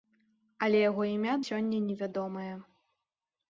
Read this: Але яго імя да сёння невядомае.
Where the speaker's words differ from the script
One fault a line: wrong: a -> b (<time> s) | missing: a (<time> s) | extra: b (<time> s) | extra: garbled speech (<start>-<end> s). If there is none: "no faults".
missing: да (1.4 s)